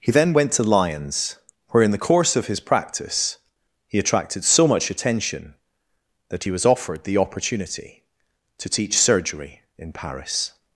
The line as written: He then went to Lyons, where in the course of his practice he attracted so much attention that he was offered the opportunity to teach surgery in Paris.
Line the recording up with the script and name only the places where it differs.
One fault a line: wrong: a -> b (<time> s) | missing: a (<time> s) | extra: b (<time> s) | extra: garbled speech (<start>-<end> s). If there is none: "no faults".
no faults